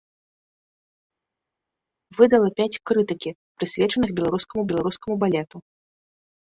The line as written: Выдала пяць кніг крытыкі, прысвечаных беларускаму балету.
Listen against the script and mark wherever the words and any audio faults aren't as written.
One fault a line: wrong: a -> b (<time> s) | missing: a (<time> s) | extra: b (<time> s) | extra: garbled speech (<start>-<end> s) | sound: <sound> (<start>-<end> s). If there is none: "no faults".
missing: кніг (2.8 s)
extra: беларускаму (4.7 s)